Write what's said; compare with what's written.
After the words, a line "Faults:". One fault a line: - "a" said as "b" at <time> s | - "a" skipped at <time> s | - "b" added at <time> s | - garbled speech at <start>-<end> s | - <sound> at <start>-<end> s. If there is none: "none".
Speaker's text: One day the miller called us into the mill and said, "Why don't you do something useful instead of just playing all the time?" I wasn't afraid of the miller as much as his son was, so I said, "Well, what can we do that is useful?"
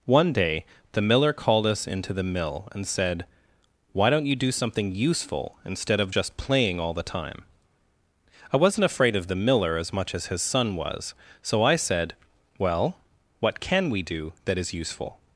One day the miller called us into the mill and said, "Why don't you do something useful instead of just playing all the time?" I wasn't afraid of the miller as much as his son was, so I said, "Well, what can we do that is useful?"
Faults:
none